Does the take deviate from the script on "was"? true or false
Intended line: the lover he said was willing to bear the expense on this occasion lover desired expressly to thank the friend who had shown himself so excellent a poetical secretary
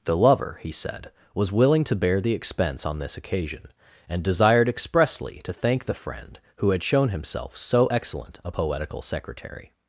false